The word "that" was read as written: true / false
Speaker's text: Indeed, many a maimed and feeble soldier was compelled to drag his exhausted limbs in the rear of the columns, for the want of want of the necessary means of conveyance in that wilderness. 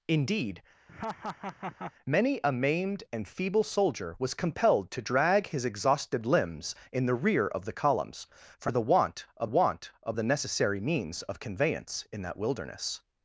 true